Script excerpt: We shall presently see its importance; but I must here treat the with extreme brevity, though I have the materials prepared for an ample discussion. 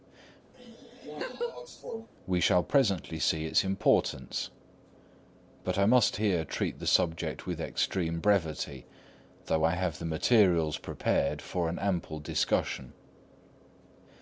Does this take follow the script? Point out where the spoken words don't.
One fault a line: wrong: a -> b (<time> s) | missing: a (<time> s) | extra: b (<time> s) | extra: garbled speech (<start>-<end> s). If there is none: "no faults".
extra: subject (6.9 s)